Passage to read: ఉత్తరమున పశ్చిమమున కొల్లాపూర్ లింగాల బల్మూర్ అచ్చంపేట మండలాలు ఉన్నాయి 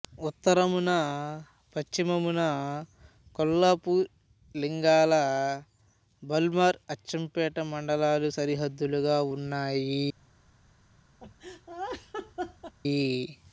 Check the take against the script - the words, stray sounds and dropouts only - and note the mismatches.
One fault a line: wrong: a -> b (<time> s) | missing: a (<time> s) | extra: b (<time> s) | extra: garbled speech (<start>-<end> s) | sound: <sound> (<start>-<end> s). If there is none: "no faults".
extra: సరిహద్దులుగా (8.4 s)
sound: laugh (11.2-12.7 s)